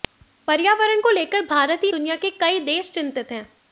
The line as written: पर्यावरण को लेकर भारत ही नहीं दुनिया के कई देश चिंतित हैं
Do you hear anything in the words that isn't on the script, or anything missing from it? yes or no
yes